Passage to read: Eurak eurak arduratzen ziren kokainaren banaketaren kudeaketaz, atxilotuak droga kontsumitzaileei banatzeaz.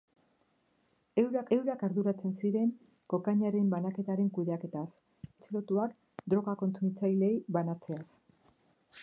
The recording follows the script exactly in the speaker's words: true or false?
true